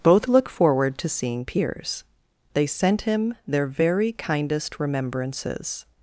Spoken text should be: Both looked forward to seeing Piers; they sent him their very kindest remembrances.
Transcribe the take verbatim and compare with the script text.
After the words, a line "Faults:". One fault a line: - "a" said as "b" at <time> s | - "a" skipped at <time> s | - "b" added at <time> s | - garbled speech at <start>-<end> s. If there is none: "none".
Both look forward to seeing Piers; they sent him their very kindest remembrances.
Faults:
- "looked" said as "look" at 0.3 s